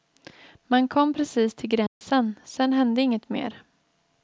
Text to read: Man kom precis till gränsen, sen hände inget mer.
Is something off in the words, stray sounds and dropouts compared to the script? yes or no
yes